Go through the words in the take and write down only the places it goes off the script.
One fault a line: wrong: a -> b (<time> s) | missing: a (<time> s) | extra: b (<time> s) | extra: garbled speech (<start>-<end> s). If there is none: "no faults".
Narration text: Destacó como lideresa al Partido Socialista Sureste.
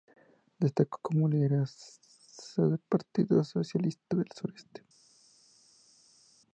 wrong: al -> del (2.6 s)
extra: del (4.1 s)